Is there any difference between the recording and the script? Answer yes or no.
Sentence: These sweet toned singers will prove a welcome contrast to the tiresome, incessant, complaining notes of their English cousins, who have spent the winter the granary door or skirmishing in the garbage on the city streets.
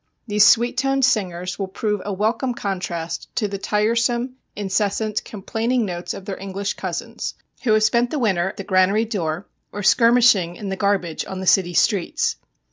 no